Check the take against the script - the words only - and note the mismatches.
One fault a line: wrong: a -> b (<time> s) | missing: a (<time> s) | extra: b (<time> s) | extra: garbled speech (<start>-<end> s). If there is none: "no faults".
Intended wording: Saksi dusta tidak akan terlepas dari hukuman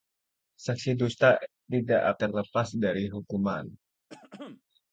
missing: akan (2.2 s)